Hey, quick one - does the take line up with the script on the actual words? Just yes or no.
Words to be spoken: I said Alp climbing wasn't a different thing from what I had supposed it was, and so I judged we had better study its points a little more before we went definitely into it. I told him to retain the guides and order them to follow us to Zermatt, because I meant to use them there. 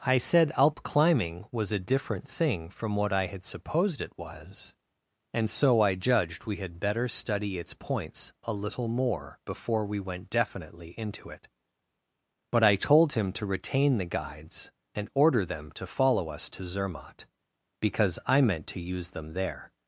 no